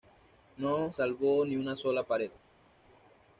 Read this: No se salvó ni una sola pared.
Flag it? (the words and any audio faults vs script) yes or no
yes